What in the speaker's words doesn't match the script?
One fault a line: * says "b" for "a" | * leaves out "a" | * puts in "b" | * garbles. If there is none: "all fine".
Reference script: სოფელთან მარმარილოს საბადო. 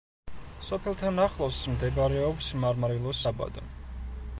* puts in "ახლოს მდებარეობს"